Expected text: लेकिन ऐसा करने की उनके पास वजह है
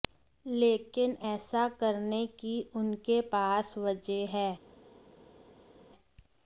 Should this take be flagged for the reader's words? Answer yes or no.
no